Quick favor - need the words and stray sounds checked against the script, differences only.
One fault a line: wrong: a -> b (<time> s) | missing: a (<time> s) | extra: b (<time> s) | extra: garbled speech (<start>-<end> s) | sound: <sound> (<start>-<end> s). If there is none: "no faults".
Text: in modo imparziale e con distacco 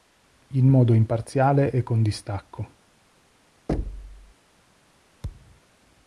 sound: thud (3.7-4.3 s)
sound: thud (5.2-5.6 s)